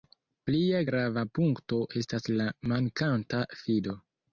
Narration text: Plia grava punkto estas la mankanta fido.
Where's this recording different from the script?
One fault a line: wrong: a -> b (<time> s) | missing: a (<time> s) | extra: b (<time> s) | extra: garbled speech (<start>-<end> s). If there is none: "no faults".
no faults